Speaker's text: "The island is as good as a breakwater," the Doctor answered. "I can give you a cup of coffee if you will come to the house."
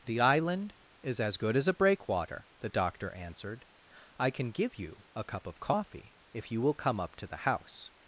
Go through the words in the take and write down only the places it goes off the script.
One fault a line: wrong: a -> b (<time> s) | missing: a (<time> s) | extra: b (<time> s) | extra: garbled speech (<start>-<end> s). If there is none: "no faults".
extra: up (7.0 s)